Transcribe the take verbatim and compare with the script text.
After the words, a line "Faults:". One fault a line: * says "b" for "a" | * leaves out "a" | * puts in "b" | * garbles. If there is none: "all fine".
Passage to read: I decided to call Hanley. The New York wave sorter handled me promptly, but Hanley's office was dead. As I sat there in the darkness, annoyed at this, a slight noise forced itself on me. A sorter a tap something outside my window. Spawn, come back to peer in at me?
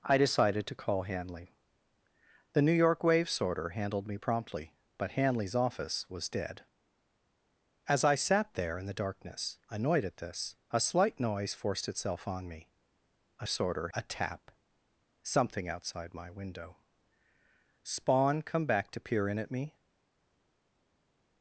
I decided to call Hanley. The New York wave sorter handled me promptly, but Hanley's office was dead. As I sat there in the darkness, annoyed at this, a slight noise forced itself on me. A sorter a tap something outside my window. Spawn, come back to peer in at me?
Faults:
all fine